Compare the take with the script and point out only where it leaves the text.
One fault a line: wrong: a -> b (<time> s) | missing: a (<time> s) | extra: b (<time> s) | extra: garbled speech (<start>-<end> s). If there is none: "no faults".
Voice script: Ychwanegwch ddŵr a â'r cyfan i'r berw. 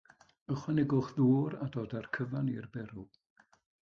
extra: dod (1.8 s)